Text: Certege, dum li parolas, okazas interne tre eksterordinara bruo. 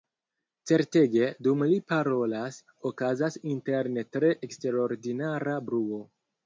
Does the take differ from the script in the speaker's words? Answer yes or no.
no